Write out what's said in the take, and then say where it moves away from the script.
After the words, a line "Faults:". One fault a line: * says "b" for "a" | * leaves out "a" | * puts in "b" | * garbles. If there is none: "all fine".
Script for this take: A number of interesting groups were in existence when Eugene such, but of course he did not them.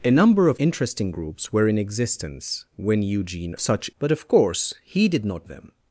A number of interesting groups were in existence when Eugene such, but of course he did not them.
Faults:
all fine